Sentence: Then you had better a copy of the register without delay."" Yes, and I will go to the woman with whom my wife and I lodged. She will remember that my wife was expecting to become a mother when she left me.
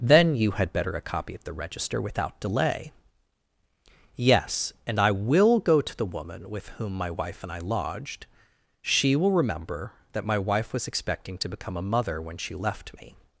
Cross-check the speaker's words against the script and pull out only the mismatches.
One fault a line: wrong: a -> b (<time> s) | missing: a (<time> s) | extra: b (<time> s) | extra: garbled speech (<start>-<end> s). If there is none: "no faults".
no faults